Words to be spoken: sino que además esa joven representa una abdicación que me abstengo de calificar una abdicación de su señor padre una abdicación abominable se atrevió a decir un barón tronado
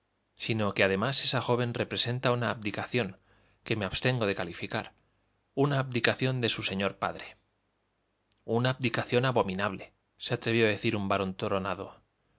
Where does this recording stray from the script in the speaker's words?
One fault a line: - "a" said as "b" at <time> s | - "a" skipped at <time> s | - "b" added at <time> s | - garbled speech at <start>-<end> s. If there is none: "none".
none